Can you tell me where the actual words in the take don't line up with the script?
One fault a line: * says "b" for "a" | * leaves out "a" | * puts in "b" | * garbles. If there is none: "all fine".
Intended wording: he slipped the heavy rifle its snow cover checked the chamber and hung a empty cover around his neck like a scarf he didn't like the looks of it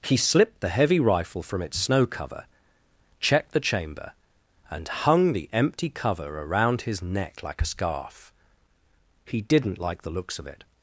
* puts in "from"
* says "the" for "a"